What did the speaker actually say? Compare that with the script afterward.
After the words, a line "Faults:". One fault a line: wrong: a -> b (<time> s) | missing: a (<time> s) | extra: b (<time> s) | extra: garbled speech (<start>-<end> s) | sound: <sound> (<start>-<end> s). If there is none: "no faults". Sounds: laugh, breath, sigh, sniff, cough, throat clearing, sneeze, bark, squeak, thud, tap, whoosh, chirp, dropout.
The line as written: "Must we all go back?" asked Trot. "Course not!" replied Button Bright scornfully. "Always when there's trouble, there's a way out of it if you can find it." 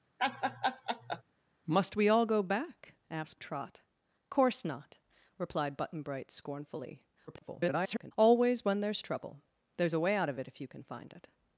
"Must we all go back?" asked Trot. "Course not!" replied Button Bright scornfully. [garbled] "Always when there's trouble, there's a way out of it if you can find it."
Faults:
sound: laugh (0.2-1.2 s)
extra: garbled speech (7.3-8.1 s)